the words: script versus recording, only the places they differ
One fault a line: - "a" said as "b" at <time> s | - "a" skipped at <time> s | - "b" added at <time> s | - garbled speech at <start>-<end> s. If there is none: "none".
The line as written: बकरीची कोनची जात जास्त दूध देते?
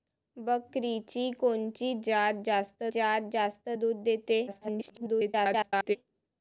- "जात जास्त" added at 2.9 s
- garbled speech at 4.5-6.0 s